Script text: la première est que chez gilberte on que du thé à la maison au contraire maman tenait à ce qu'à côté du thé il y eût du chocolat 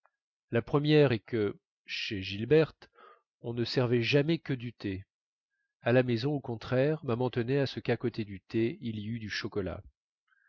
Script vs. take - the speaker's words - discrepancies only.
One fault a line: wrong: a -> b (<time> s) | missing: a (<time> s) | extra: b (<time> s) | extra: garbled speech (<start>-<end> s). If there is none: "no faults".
extra: ne servait jamais (3.5 s)